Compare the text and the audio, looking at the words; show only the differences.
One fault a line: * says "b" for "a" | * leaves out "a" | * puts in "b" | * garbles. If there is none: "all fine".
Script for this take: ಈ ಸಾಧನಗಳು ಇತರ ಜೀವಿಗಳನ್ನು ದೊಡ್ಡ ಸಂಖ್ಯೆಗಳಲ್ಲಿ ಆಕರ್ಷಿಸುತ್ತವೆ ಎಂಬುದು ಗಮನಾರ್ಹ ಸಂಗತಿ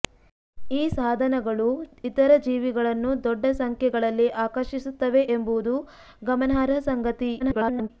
* garbles